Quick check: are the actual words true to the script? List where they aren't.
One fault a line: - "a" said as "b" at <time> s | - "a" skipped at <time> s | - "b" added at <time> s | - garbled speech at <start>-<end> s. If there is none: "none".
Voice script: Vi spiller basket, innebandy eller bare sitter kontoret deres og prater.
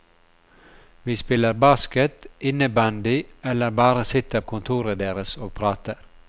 none